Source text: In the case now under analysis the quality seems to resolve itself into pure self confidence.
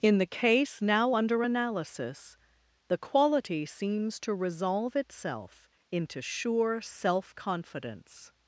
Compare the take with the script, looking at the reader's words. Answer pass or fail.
fail